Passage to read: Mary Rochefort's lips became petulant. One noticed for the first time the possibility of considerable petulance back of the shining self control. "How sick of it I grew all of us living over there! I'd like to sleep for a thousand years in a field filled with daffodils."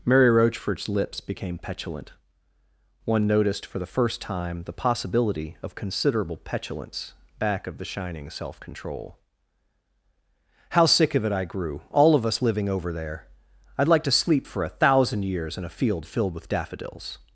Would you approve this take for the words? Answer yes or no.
yes